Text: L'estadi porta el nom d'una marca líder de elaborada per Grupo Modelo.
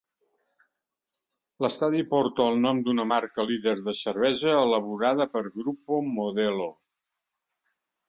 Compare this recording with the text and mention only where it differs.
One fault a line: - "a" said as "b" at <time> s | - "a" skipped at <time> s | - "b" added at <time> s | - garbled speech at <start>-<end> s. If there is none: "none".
- "cervesa" added at 4.0 s